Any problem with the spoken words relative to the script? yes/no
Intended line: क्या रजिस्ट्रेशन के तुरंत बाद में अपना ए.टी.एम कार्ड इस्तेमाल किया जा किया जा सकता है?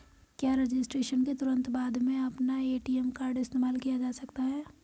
yes